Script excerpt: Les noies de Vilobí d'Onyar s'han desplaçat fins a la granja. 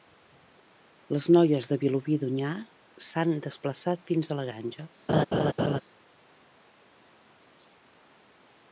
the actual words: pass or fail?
pass